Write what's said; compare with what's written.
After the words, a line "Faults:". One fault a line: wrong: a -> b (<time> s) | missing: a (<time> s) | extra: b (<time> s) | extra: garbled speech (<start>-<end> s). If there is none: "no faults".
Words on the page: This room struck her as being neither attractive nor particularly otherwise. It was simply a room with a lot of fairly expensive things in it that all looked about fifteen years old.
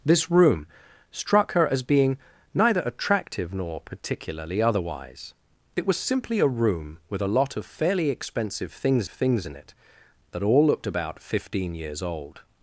This room struck her as being neither attractive nor particularly otherwise. It was simply a room with a lot of fairly expensive things things in it that all looked about fifteen years old.
Faults:
extra: things (9.1 s)